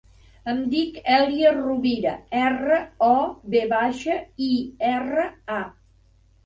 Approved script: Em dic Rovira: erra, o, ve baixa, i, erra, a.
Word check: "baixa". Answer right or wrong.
right